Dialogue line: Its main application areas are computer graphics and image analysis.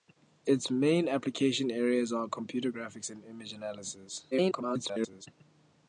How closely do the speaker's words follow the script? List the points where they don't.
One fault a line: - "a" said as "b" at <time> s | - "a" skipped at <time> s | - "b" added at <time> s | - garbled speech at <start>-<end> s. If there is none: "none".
- garbled speech at 4.3-5.3 s